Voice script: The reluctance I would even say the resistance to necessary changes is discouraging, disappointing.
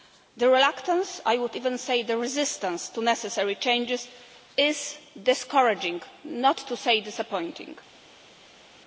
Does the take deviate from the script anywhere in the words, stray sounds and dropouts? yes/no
yes